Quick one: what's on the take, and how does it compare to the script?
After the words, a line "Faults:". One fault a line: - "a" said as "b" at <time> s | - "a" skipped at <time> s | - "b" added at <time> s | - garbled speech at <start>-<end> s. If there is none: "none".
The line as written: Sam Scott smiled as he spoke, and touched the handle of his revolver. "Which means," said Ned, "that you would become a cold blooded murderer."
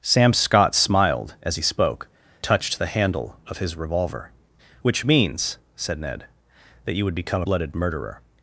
Sam Scott smiled as he spoke, touched the handle of his revolver. "Which means," said Ned, "that you would become blooded murderer."
Faults:
- "and" skipped at 2.1 s
- "a cold" skipped at 7.4 s